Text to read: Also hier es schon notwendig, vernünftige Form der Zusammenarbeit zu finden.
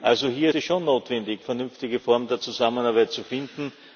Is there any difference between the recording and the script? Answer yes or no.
no